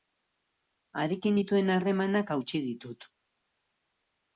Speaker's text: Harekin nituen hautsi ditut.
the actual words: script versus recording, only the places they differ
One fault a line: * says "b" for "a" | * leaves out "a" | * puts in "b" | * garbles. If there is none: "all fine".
* puts in "harremanak"